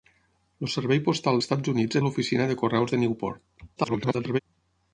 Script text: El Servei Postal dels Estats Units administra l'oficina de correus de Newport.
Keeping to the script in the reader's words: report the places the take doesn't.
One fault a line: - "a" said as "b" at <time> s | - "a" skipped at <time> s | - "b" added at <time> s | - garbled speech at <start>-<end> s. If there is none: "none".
- "dels" skipped at 1.4 s
- "administra" skipped at 2.0 s
- garbled speech at 3.8-4.4 s